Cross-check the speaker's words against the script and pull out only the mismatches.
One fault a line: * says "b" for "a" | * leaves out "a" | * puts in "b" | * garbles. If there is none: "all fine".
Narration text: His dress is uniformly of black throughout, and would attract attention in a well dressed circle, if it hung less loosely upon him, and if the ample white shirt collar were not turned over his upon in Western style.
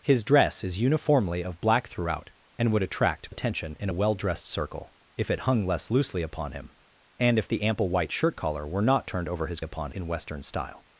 all fine